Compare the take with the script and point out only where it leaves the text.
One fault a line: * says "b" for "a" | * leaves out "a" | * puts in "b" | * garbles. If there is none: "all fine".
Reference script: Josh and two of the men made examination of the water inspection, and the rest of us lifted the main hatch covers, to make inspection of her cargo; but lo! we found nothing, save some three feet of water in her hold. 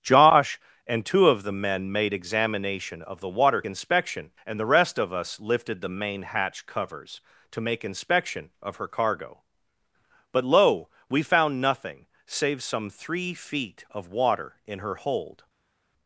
all fine